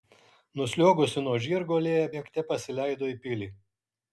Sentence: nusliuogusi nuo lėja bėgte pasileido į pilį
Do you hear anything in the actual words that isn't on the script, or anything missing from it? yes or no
yes